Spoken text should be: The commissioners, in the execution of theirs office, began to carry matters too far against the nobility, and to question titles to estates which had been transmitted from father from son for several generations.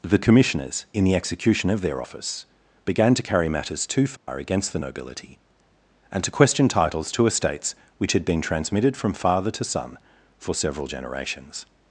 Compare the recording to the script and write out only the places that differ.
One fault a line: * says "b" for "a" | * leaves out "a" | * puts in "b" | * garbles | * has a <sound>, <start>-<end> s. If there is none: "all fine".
* says "their" for "theirs"
* has a dropout, 4.2-4.3 s
* says "to" for "from"